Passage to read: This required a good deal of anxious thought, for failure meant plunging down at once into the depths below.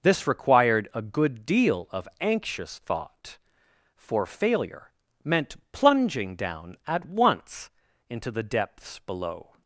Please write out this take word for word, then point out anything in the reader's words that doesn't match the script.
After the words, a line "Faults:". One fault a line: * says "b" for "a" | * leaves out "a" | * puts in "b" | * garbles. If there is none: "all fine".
This required a good deal of anxious thought, for failure meant plunging down at once into the depths below.
Faults:
all fine